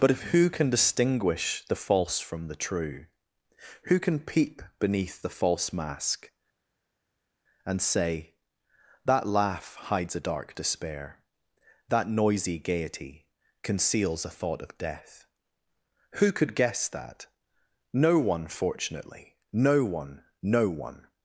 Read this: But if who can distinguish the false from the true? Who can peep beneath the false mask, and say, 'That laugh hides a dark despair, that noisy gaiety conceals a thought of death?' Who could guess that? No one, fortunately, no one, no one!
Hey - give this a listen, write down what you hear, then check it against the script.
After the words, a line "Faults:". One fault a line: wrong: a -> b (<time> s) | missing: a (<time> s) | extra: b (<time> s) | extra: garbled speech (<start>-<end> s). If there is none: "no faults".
But if who can distinguish the false from the true? Who can peep beneath the false mask, and say, 'That laugh hides a dark despair, that noisy gaiety conceals a thought of death?' Who could guess that? No one, fortunately, no one, no one!
Faults:
no faults